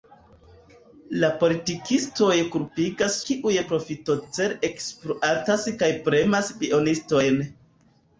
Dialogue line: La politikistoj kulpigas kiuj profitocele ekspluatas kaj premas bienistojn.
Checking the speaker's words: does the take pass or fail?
pass